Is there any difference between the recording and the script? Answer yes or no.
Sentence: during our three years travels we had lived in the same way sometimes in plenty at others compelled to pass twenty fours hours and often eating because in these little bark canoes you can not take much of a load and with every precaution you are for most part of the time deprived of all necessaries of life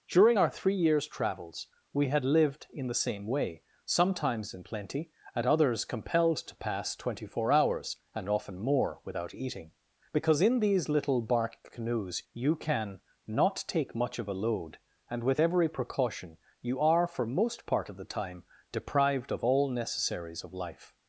yes